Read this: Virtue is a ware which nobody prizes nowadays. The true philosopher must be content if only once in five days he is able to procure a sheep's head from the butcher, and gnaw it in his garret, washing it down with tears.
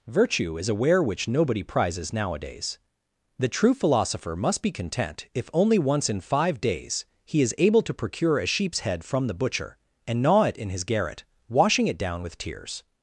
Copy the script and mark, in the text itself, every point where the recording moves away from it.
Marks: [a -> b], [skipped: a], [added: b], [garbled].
Virtue is a ware which nobody prizes nowadays. The true philosopher must be content if only once in five days he is able to procure a sheep's head from the butcher, and gnaw it in his garret, washing it down with tears.